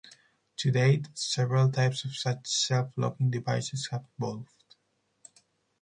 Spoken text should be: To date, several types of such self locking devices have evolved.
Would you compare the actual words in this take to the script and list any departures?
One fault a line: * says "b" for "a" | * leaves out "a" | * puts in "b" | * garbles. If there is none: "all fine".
all fine